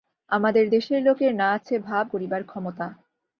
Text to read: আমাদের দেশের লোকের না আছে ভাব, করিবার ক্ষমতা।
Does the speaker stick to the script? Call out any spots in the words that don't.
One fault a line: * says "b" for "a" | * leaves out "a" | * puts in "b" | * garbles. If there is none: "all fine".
all fine